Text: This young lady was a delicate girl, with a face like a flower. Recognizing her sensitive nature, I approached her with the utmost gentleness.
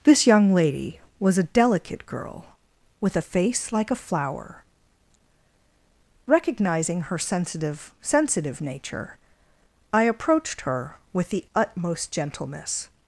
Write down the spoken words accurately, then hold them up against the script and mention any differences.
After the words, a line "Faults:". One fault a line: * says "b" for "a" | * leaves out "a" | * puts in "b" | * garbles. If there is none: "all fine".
This young lady was a delicate girl, with a face like a flower. Recognizing her sensitive sensitive nature, I approached her with the utmost gentleness.
Faults:
* puts in "sensitive"